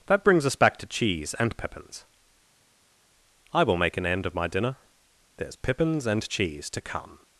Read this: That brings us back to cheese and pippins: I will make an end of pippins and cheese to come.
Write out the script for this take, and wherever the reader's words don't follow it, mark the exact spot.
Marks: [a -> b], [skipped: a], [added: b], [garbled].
That brings us back to cheese and pippins: I will make an end of [added: my dinner there's] pippins and cheese to come.